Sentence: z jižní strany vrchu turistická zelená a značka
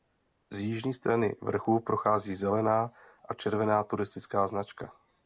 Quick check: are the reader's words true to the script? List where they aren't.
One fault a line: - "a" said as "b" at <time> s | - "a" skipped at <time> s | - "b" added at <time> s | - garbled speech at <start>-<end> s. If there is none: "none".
- "turistická" said as "prochází" at 1.8 s
- "červená turistická" added at 3.3 s